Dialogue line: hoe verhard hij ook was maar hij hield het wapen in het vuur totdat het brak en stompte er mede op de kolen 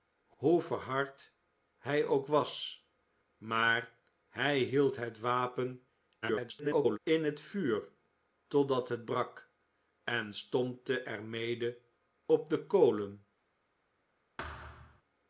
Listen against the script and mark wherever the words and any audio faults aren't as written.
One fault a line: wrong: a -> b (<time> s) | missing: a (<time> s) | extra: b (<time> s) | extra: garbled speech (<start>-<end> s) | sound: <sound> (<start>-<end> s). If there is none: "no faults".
extra: garbled speech (6.2-7.0 s)
sound: thud (14.4-15.0 s)